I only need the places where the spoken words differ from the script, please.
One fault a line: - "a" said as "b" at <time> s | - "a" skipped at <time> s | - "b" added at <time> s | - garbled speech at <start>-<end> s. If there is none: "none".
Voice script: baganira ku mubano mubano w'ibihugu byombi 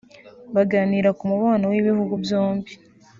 - "mubano" skipped at 1.7 s